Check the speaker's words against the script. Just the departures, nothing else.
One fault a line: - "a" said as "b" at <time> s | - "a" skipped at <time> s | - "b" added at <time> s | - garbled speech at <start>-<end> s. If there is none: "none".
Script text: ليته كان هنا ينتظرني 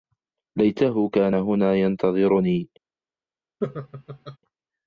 none